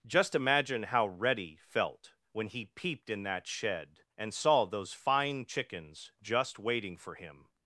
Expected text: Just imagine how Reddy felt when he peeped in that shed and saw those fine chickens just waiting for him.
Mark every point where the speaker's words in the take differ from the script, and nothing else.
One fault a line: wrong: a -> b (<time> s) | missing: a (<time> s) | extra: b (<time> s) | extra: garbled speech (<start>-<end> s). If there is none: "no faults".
no faults